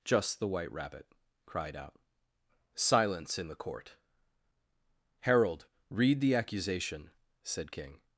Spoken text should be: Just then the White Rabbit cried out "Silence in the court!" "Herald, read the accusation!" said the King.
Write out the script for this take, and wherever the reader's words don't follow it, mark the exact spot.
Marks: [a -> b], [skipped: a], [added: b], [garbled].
Just [skipped: then] the White Rabbit cried out "Silence in the court!" "Herald, read the accusation!" said [skipped: the] King.